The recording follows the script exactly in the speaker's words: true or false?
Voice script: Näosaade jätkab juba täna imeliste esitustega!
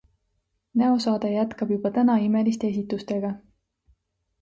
true